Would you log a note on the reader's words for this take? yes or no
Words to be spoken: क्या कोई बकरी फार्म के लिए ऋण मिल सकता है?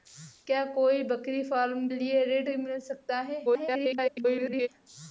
yes